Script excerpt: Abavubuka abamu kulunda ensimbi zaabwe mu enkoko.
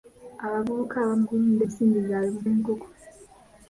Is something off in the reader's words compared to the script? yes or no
no